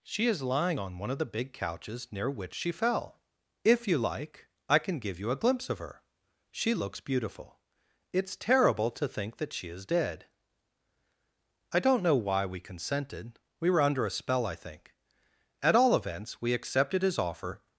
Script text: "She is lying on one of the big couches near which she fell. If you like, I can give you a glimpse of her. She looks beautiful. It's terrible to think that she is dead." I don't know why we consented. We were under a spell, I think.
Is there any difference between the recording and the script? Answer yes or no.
yes